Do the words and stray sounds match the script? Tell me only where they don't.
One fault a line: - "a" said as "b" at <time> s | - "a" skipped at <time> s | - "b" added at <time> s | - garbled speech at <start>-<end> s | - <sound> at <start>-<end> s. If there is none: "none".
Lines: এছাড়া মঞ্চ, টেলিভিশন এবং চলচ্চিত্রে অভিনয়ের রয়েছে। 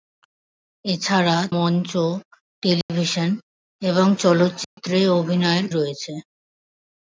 - dropout at 2.8-2.9 s
- dropout at 4.6-4.8 s